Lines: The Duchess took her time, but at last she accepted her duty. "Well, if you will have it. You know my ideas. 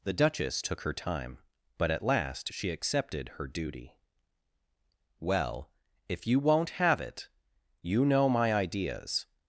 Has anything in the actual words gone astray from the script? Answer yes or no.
yes